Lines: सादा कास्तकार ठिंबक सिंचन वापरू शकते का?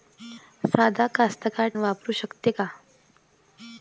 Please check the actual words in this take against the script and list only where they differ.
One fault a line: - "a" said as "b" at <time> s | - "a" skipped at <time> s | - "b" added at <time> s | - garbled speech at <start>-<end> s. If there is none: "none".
- "ठिंबक सिंचन" skipped at 1.7 s